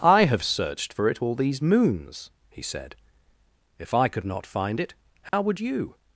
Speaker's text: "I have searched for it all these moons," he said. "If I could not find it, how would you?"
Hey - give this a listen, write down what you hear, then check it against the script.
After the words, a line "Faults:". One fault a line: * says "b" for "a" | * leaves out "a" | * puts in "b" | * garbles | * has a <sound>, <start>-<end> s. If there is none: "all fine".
"I have searched for it all these moons," he said. "If I could not find it, how would you?"
Faults:
* has a dropout, 5.3-5.3 s